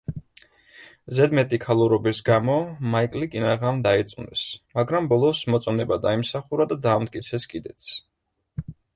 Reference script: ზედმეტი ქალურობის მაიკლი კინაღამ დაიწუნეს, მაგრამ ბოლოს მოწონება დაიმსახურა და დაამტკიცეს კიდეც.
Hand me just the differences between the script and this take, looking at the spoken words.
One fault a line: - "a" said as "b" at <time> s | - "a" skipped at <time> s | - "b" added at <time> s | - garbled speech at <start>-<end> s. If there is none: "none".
- "გამო" added at 2.3 s